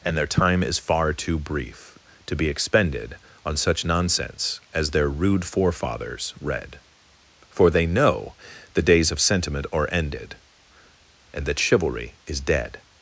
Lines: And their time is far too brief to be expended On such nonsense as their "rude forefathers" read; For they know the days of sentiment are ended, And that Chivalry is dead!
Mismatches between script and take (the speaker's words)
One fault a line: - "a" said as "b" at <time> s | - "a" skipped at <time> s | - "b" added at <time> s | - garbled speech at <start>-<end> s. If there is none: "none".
none